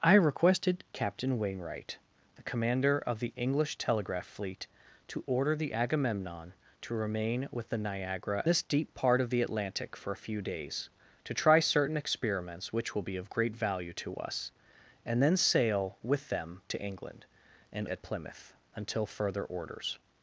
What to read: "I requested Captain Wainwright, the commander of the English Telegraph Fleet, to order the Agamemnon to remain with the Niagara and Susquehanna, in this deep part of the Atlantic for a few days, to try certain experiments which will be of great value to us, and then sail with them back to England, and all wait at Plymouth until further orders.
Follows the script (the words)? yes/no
no